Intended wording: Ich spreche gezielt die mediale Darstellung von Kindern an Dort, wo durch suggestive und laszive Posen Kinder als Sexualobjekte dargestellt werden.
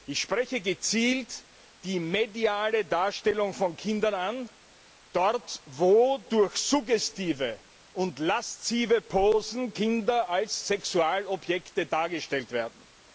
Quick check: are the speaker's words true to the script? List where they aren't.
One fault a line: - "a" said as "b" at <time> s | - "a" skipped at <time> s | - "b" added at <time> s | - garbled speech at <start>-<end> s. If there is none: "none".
none